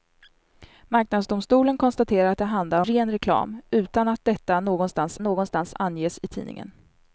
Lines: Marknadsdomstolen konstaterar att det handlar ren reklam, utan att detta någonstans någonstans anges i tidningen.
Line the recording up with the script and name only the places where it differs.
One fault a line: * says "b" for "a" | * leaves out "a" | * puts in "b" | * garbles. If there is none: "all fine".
all fine